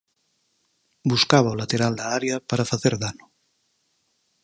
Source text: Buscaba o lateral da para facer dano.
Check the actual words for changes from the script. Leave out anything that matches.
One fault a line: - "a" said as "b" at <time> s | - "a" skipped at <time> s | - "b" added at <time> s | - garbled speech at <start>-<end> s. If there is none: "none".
- "área" added at 2.2 s